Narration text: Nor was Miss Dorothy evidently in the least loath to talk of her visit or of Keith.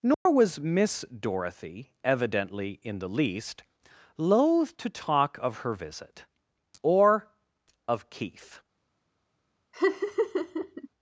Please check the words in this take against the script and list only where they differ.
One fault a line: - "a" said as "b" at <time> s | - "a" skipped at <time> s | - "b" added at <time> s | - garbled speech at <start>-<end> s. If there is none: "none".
none